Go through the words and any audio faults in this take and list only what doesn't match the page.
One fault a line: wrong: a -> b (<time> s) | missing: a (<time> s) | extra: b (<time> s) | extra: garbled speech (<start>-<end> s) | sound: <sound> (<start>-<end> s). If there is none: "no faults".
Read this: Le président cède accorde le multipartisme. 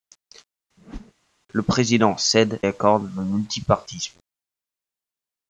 sound: whoosh (0.8-1.1 s)